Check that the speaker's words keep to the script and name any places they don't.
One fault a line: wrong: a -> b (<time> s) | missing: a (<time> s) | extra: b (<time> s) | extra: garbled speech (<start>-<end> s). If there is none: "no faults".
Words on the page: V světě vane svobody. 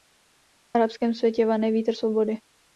extra: arabském (0.8 s)
extra: vítr (1.7 s)